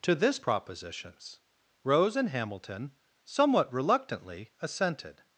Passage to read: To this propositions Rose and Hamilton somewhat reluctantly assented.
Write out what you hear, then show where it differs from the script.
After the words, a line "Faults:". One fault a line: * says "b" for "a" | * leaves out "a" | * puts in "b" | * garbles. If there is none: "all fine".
To this propositions Rose and Hamilton somewhat reluctantly assented.
Faults:
all fine